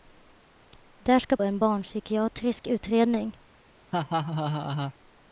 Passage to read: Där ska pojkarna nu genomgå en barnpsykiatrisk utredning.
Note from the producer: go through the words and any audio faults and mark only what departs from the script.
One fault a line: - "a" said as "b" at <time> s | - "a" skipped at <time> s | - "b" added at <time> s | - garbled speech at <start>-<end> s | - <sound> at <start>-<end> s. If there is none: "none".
- "pojkarna nu genomgå" skipped at 1.4 s
- laugh at 3.9-4.9 s